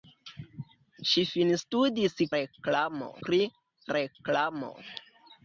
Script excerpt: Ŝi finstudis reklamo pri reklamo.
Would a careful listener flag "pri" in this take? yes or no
no